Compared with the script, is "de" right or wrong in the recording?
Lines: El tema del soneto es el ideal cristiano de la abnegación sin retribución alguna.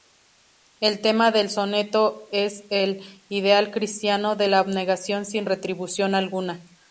right